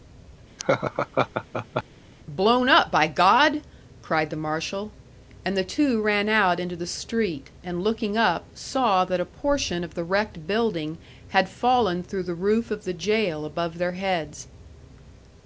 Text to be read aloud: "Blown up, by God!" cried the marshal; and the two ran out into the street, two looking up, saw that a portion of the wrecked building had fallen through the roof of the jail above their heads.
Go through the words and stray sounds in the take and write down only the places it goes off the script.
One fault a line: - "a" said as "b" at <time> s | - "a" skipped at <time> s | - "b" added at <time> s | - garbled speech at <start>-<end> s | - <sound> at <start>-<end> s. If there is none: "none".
- laugh at 0.6-1.8 s
- "two" said as "and" at 7.7 s